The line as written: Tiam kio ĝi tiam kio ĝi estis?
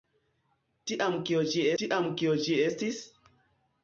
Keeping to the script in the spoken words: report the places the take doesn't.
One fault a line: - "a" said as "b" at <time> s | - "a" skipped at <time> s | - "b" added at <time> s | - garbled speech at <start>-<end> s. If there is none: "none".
none